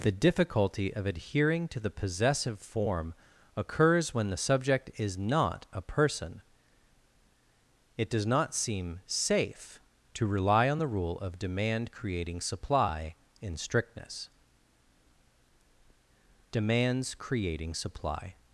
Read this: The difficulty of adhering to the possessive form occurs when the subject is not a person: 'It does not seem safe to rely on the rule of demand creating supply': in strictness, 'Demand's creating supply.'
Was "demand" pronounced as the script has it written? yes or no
yes